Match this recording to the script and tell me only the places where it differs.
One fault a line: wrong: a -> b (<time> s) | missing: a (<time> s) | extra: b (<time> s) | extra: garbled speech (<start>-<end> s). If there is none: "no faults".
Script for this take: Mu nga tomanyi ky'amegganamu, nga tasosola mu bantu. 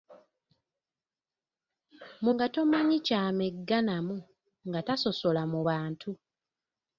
no faults